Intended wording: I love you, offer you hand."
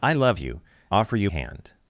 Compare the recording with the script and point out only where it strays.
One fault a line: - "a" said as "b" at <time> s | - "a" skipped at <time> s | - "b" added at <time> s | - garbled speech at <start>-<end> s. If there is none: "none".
none